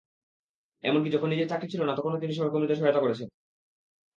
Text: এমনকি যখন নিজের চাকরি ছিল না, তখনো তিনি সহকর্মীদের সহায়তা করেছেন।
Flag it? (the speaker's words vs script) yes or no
no